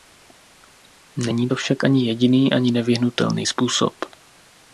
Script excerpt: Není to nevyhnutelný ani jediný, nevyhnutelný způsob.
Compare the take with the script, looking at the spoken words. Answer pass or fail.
fail